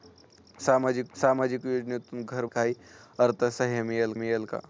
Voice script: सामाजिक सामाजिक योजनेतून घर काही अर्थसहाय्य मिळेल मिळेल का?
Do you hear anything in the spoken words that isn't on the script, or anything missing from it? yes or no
no